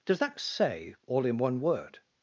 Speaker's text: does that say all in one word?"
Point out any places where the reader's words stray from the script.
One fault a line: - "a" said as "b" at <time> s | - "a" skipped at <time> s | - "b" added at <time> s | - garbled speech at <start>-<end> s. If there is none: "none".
none